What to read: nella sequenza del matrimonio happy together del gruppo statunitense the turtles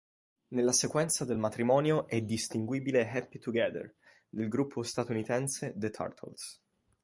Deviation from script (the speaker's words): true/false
true